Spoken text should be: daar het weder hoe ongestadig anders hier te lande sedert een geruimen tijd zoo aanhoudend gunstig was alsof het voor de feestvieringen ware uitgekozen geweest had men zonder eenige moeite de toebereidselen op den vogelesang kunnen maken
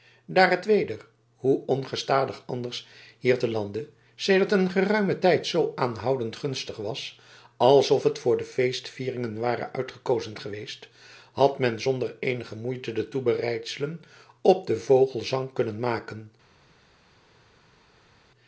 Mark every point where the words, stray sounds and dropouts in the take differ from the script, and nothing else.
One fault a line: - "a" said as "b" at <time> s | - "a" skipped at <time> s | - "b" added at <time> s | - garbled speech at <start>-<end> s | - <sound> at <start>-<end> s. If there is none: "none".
none